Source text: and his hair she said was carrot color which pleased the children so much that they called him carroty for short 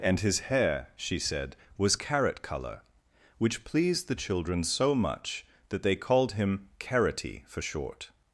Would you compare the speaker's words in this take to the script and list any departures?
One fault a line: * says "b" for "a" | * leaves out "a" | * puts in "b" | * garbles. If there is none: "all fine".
all fine